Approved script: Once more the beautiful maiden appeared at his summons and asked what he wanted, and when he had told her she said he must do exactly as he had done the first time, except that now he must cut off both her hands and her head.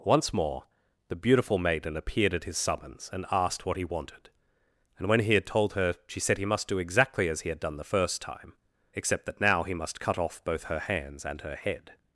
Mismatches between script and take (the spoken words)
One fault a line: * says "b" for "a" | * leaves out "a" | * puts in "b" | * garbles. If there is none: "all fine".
all fine